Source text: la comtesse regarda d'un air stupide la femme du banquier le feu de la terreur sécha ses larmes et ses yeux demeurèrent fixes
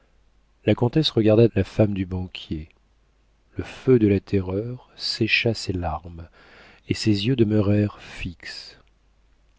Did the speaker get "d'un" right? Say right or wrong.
wrong